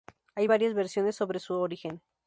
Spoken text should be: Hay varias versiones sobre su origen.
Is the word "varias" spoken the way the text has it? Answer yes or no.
yes